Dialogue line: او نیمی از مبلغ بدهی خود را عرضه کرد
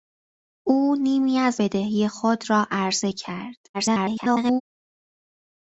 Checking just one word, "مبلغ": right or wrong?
wrong